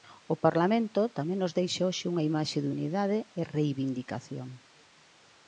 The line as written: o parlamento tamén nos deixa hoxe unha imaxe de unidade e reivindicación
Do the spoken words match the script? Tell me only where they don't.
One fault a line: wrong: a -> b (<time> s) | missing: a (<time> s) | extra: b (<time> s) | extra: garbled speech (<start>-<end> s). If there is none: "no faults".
no faults